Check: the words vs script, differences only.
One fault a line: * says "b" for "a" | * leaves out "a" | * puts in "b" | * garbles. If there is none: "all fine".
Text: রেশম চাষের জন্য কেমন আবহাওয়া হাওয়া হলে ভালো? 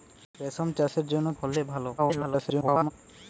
* leaves out "কেমন আবহাওয়া হাওয়া"
* garbles